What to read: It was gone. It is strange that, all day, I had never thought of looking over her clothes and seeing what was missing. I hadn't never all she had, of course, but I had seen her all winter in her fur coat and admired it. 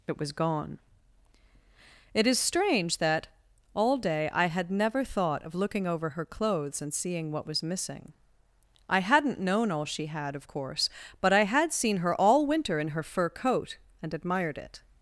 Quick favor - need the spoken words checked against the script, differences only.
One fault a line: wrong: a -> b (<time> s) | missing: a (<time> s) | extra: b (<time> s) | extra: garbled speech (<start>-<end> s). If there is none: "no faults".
wrong: never -> known (9.4 s)